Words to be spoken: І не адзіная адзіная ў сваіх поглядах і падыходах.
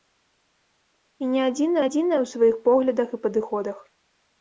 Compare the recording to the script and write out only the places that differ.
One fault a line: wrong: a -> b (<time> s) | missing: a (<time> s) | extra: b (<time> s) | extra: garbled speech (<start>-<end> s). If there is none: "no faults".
no faults